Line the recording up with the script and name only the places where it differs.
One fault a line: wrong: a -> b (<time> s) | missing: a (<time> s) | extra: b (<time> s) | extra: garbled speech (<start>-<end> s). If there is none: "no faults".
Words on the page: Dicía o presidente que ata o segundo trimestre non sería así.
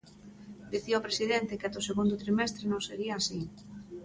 no faults